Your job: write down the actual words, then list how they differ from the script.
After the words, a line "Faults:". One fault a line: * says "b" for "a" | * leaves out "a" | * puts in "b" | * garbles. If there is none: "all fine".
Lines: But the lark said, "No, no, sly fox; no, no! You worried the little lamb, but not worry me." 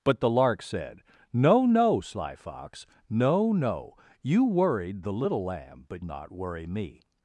But the lark said, "No, no, sly fox; no, no! You worried the little lamb, but not worry me."
Faults:
all fine